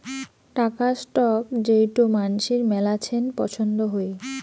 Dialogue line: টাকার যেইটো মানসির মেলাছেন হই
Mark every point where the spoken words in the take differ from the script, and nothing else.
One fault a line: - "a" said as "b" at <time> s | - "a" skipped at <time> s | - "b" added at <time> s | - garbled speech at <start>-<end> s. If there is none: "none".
- "স্টক" added at 1.0 s
- "পছন্দ" added at 3.4 s